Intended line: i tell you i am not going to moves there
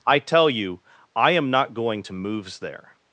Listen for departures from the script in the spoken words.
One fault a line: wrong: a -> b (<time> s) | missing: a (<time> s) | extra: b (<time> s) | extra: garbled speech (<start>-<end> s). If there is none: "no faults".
no faults